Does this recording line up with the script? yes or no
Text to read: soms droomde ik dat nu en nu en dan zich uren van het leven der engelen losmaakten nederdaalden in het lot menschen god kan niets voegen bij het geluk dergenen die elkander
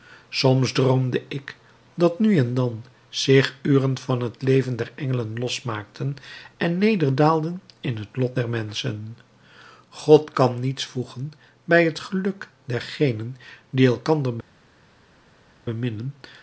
no